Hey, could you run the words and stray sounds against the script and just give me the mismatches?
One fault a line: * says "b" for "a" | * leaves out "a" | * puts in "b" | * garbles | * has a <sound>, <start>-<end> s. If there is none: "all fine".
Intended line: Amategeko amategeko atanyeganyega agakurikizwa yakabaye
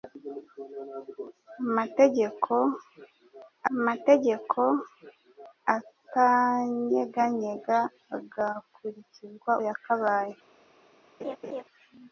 * has a laugh, 11.2-11.6 s